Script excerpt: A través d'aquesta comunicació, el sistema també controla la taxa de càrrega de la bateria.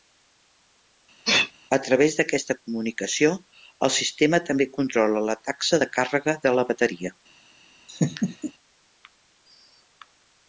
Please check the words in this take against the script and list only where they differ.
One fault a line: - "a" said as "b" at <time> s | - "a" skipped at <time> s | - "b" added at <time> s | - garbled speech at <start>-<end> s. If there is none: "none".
none